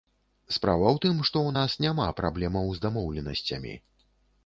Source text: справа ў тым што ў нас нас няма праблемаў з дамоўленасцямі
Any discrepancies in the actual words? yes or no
yes